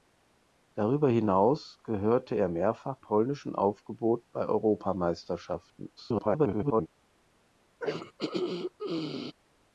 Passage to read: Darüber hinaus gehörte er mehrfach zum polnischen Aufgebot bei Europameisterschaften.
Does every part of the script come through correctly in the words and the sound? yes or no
no